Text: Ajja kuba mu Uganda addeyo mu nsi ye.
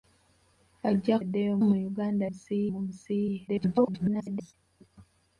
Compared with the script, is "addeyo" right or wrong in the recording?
wrong